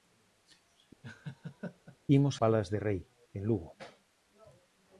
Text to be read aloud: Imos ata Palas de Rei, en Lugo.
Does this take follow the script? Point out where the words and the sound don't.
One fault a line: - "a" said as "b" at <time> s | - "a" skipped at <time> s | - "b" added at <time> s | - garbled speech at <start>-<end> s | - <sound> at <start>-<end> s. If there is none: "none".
- laugh at 1.0-2.0 s
- "ata" skipped at 2.3 s